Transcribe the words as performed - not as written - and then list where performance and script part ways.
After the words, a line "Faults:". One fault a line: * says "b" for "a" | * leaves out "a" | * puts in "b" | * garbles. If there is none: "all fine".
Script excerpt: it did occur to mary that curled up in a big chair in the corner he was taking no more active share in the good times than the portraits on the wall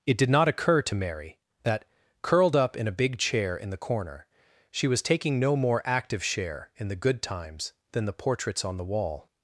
it did not occur to mary that curled up in a big chair in the corner she was taking no more active share in the good times than the portraits on the wall
Faults:
* puts in "not"
* says "she" for "he"